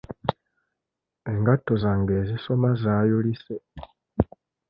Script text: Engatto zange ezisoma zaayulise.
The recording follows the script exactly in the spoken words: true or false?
true